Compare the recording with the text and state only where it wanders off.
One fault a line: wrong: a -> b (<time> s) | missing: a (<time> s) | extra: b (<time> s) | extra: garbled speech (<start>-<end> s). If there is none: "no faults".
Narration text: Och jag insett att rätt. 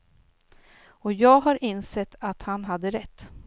extra: har (1.4 s)
extra: han hade (2.4 s)